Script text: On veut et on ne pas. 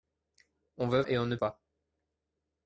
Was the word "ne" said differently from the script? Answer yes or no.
no